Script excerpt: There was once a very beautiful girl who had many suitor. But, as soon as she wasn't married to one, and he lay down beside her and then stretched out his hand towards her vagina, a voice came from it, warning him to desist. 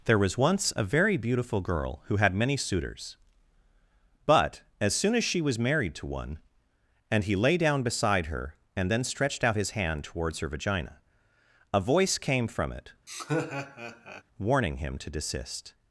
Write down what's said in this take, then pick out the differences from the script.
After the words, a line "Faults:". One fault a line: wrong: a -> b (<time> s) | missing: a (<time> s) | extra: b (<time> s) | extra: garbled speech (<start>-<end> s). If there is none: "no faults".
There was once a very beautiful girl who had many suitors. But, as soon as she was married to one, and he lay down beside her and then stretched out his hand towards her vagina, a voice came from it, warning him to desist.
Faults:
wrong: suitor -> suitors (2.6 s)
wrong: wasn't -> was (5.4 s)